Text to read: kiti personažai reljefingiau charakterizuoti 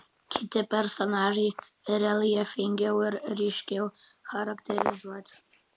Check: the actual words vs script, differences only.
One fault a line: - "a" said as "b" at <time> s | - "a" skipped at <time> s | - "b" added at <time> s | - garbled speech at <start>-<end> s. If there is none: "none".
- "ir ryškiau" added at 3.1 s